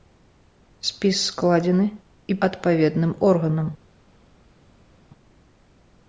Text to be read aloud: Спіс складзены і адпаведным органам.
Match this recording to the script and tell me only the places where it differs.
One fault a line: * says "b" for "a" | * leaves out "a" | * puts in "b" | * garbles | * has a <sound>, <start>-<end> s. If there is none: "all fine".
all fine